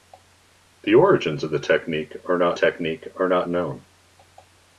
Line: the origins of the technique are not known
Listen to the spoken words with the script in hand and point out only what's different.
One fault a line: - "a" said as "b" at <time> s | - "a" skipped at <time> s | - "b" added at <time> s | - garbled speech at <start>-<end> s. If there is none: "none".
- "technique are not" added at 2.5 s